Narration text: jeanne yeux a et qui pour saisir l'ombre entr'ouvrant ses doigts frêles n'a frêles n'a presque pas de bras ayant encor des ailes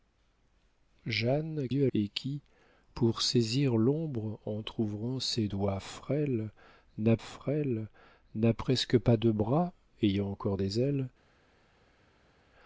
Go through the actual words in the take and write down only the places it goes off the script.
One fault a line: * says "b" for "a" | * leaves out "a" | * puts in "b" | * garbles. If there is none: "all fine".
all fine